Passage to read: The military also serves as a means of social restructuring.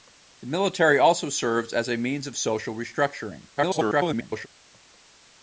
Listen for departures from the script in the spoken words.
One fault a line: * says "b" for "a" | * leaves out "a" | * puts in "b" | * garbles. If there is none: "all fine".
* garbles